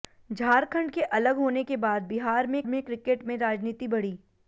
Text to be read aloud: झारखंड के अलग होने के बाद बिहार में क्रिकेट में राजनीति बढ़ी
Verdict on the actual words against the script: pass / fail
fail